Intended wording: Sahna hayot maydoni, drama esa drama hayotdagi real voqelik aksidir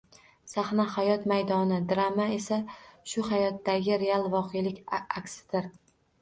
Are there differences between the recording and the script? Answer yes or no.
yes